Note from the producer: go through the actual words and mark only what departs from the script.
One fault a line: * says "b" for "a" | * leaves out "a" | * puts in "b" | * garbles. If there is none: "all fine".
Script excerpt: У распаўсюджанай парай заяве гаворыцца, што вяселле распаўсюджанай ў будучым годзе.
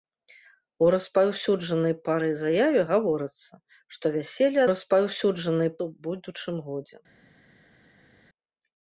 all fine